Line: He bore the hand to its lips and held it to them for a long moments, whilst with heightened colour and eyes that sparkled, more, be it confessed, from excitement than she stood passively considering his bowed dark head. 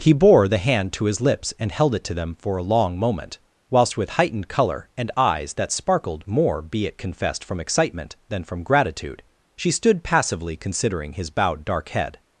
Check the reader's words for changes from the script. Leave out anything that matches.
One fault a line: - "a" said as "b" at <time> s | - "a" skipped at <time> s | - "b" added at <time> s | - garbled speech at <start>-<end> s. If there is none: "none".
- "its" said as "his" at 1.1 s
- "moments" said as "moment" at 3.0 s
- "from gratitude" added at 8.4 s